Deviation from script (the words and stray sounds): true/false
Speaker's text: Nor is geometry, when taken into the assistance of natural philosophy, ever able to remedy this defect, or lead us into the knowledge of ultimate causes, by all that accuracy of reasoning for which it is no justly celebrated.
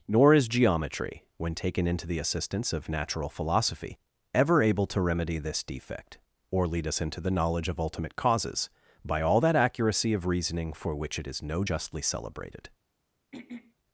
true